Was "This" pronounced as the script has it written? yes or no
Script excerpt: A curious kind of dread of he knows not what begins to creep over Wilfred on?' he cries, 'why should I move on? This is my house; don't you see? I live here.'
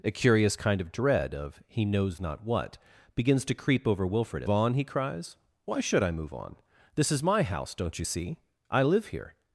yes